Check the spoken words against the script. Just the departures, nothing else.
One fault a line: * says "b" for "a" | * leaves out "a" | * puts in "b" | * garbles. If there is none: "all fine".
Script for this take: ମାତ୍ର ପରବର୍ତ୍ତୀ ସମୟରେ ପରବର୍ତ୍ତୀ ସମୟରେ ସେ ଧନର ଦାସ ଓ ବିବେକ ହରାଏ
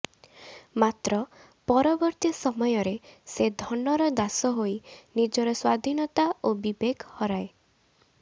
* leaves out "ପରବର୍ତ୍ତୀ ସମୟରେ"
* puts in "ହୋଇ ନିଜର ସ୍ୱାଧୀନତା"